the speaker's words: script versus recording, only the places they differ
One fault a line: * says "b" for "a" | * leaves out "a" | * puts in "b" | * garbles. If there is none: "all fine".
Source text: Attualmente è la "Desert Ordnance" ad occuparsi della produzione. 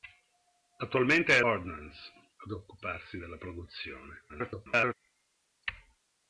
* leaves out "la Desert"
* garbles